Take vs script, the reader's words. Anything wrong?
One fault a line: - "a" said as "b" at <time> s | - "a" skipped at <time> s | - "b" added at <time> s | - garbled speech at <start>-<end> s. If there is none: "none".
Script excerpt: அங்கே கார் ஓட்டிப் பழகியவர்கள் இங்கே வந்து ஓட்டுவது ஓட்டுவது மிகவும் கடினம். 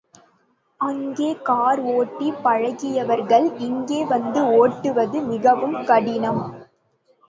- "ஓட்டுவது" skipped at 5.2 s